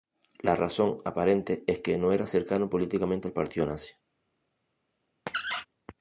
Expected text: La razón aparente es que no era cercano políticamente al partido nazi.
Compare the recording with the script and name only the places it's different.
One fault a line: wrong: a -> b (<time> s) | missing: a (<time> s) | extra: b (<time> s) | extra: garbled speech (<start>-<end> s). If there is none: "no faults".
no faults